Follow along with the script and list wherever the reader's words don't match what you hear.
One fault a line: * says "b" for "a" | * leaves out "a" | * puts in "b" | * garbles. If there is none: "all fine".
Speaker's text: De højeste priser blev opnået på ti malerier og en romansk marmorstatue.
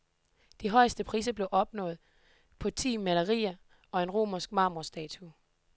all fine